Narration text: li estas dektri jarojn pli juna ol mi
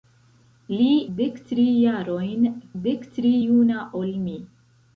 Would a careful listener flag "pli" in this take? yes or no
yes